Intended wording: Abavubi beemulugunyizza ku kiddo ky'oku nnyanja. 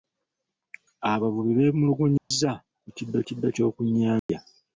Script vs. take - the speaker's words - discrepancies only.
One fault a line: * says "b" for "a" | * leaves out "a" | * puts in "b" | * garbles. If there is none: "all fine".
* puts in "kiddo"